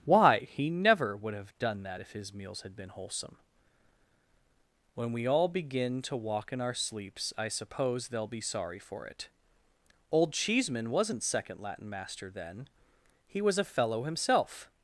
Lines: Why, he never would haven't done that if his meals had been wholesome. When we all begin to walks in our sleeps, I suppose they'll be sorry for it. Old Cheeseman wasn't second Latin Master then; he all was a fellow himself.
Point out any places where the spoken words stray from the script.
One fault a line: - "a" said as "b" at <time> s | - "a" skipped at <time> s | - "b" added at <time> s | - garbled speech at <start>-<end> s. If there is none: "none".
- "haven't" said as "have" at 1.3 s
- "walks" said as "walk" at 6.2 s
- "all" skipped at 13.4 s